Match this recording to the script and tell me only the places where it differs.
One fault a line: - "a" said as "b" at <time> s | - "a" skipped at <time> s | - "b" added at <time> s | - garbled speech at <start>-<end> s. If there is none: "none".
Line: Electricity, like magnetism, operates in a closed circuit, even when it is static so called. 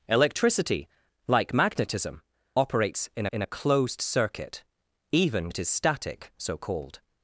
- "in" added at 3.3 s
- "when" skipped at 5.5 s